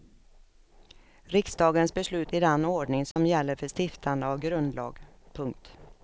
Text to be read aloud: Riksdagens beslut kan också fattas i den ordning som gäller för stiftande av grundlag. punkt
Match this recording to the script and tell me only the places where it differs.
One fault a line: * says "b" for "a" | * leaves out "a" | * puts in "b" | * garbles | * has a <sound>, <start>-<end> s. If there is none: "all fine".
* leaves out "kan också fattas"
* has a dropout, 3.1-3.2 s